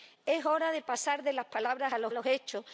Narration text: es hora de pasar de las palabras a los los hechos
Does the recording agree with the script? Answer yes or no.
yes